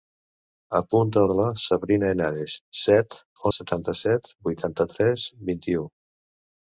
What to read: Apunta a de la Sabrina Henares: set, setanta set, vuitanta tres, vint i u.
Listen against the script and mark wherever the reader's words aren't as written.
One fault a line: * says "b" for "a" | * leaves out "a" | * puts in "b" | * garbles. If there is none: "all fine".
all fine